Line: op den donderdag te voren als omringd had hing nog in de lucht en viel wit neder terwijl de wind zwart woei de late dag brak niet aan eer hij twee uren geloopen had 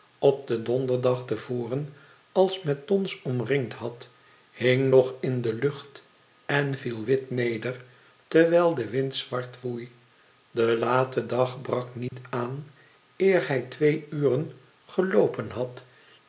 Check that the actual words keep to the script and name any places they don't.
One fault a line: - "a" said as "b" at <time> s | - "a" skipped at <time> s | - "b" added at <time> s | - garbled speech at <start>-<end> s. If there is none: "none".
- "met dons" added at 2.6 s